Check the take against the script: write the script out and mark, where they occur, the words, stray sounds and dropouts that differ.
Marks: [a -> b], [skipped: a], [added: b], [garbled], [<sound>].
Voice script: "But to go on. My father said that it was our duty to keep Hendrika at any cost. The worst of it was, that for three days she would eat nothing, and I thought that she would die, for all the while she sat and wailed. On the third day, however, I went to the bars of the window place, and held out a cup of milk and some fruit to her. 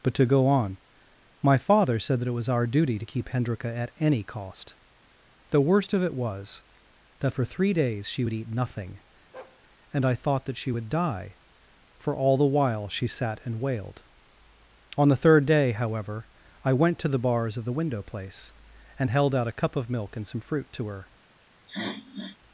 "But to go on. My father said that it was our duty to keep Hendrika at any cost. The worst of it was, that for three days she would eat nothing, [bark] and I thought that she would die, for all the while she sat and wailed. On the third day, however, I went to the bars of the window place, and held out a cup of milk and some fruit to her. [sniff]